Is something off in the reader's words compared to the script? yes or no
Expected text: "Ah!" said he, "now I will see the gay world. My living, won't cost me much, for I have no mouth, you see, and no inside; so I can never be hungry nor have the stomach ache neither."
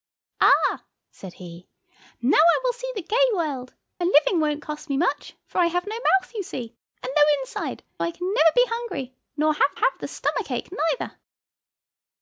yes